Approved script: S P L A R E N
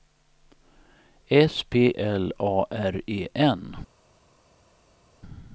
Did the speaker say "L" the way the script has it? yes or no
yes